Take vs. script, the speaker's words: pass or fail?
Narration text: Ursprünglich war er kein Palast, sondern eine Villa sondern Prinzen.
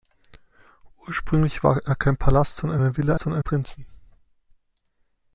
pass